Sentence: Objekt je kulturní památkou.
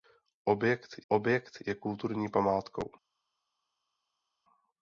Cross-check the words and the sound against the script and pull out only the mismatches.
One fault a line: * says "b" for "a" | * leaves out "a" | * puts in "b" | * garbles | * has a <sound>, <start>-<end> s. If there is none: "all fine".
* puts in "objekt"